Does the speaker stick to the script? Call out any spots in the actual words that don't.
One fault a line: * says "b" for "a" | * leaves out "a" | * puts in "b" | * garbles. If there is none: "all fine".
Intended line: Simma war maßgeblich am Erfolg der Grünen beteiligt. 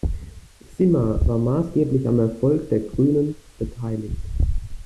all fine